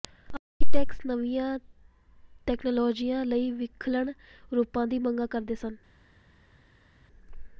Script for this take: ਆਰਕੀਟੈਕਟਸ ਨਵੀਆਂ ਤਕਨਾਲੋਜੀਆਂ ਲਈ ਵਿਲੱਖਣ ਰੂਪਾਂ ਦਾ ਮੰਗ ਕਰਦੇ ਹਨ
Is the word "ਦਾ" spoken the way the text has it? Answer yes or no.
no